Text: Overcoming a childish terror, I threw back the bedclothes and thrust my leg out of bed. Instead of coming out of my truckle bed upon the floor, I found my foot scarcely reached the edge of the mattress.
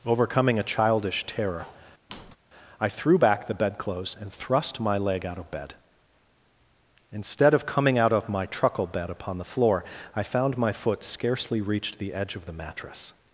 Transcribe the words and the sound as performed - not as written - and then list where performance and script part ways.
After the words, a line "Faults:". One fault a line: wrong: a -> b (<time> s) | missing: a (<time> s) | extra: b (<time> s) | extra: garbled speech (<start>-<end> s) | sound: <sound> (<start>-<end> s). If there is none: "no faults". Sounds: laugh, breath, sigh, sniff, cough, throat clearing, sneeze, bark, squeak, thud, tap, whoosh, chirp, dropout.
Overcoming a childish terror, I threw back the bedclothes and thrust my leg out of bed. Instead of coming out of my truckle bed upon the floor, I found my foot scarcely reached the edge of the mattress.
Faults:
sound: squeak (2.1-2.4 s)